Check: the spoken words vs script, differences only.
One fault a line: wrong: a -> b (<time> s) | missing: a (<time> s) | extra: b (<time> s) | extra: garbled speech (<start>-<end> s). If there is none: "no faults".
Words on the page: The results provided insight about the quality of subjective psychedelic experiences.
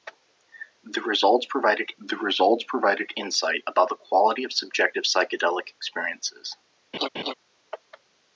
extra: the results provided (2.0 s)